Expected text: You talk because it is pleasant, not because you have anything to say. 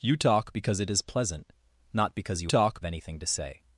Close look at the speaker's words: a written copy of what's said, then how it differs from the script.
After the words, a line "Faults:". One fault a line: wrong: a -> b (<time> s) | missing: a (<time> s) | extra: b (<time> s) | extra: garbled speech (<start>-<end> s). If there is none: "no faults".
You talk because it is pleasant, not because you talk anything to say.
Faults:
wrong: have -> talk (2.5 s)